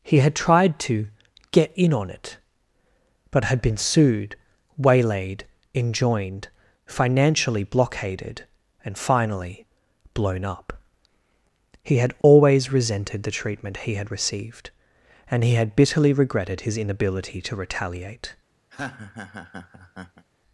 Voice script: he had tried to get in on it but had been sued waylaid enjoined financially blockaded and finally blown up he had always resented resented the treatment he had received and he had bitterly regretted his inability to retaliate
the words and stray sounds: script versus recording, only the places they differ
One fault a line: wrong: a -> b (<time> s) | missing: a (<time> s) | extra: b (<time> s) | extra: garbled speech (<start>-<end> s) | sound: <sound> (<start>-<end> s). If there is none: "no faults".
sound: dropout (12.2-12.2 s)
missing: resented (13.2 s)
sound: laugh (18.7-20.3 s)